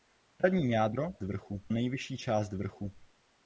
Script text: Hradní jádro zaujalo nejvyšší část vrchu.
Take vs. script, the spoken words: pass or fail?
fail